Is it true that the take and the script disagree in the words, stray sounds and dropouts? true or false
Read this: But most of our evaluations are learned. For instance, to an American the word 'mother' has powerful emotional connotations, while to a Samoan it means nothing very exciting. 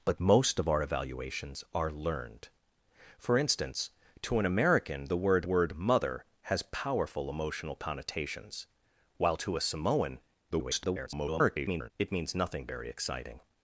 true